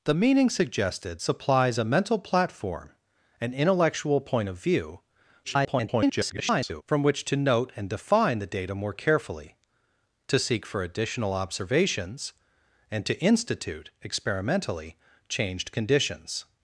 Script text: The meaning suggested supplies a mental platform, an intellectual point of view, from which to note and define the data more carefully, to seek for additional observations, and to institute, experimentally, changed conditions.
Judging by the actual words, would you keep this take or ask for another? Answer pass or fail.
fail